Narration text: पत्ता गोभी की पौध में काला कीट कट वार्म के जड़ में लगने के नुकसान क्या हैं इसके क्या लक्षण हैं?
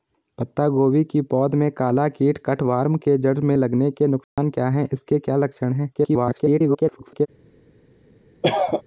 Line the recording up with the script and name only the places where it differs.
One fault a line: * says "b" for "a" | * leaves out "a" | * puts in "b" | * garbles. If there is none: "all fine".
* garbles